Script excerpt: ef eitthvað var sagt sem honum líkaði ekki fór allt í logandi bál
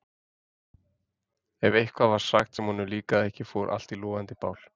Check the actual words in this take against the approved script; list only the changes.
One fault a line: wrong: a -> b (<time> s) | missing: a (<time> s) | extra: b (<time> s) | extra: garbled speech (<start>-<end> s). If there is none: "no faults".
no faults